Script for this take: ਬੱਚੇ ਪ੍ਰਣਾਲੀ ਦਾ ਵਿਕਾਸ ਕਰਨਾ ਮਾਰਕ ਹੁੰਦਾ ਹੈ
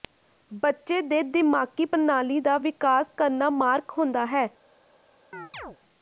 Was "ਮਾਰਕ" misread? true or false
false